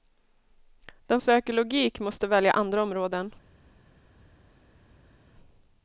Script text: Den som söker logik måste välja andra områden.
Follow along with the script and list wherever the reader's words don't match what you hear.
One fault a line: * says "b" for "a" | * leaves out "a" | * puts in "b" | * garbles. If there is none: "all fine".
* leaves out "som"